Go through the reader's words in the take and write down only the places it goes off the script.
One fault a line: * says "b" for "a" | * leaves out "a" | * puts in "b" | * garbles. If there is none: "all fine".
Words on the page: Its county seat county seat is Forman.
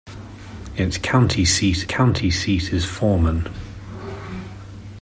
all fine